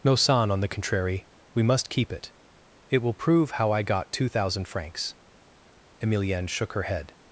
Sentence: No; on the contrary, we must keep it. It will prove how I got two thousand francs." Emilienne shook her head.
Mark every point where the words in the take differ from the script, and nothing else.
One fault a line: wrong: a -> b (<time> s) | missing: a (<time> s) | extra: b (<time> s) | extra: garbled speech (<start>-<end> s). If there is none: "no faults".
extra: son (0.1 s)